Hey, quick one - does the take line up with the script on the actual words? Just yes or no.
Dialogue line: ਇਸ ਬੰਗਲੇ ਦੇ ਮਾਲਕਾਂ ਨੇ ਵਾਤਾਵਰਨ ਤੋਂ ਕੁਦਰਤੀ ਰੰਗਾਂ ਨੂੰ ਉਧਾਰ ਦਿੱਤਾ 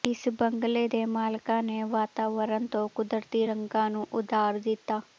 yes